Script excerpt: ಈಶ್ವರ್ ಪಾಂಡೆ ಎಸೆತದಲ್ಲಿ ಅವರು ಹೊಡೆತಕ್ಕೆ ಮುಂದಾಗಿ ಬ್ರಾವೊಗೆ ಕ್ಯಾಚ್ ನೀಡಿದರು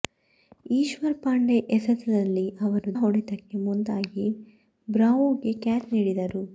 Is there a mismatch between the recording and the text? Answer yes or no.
no